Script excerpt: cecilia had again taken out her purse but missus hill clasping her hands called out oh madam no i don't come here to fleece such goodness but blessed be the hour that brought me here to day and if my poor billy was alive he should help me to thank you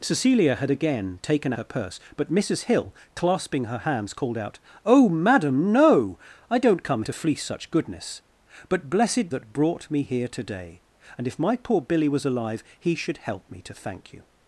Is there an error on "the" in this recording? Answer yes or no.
yes